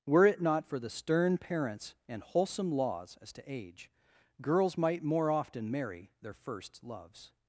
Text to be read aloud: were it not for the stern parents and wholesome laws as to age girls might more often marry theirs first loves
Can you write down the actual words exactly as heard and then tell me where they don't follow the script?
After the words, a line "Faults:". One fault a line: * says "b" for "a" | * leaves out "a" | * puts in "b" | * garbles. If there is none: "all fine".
were it not for the stern parents and wholesome laws as to age girls might more often marry their first loves
Faults:
* says "their" for "theirs"